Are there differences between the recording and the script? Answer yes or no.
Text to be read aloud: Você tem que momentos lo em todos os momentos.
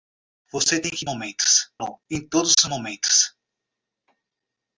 no